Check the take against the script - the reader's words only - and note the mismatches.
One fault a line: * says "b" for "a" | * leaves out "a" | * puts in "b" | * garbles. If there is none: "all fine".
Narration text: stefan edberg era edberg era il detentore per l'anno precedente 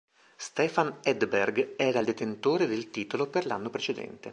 * says "il detentore del titolo" for "edberg era il detentore"